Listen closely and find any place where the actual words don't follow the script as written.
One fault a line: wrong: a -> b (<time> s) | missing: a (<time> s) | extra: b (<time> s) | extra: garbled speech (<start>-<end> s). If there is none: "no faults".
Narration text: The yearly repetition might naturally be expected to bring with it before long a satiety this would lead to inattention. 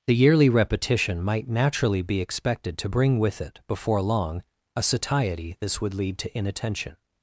no faults